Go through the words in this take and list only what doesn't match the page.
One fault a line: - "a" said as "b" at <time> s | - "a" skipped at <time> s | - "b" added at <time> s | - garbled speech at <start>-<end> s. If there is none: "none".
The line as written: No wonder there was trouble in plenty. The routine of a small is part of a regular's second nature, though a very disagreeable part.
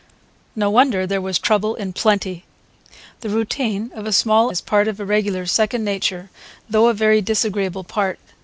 none